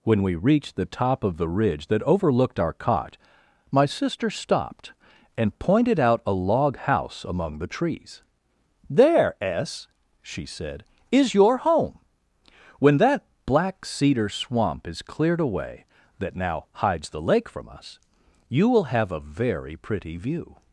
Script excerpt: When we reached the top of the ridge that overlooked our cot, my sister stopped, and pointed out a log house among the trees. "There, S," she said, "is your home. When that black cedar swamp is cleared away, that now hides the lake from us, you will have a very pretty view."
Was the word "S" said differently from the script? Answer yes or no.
no